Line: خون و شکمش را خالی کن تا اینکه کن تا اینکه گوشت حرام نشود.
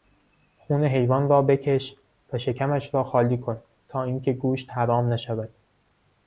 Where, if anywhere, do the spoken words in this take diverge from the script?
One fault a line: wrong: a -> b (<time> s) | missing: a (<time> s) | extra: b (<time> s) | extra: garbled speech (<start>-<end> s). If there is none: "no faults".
extra: حیوان را بکش (0.8 s)
missing: کن تا اینکه (4.3 s)